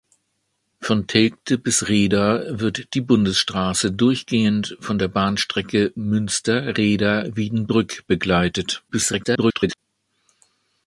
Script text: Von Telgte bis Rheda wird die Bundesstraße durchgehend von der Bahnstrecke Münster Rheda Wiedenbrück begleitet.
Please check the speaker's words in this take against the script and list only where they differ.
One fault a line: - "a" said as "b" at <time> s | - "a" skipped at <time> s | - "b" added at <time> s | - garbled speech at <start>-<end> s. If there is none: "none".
- garbled speech at 8.9-9.8 s